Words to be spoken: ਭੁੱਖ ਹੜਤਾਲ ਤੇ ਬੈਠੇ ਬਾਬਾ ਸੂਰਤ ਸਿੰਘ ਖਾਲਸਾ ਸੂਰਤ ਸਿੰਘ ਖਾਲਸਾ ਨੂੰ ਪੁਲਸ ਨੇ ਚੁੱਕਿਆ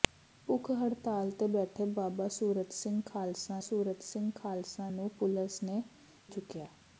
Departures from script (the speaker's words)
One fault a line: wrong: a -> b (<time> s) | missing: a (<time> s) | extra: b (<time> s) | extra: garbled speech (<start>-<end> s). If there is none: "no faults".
no faults